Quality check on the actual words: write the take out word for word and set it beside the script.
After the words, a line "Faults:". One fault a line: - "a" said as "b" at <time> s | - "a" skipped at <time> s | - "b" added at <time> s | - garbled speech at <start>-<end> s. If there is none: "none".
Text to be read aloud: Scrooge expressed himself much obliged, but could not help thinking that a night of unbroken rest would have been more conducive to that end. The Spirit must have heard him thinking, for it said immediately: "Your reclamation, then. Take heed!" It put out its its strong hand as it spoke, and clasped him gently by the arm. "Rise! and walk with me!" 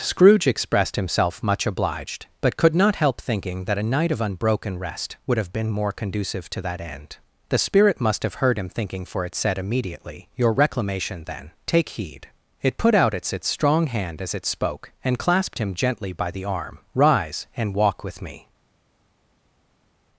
Scrooge expressed himself much obliged, but could not help thinking that a night of unbroken rest would have been more conducive to that end. The Spirit must have heard him thinking, for it said immediately: "Your reclamation, then. Take heed!" It put out its its strong hand as it spoke, and clasped him gently by the arm. "Rise! and walk with me!"
Faults:
none